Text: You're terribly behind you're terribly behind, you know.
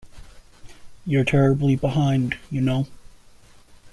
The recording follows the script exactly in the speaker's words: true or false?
false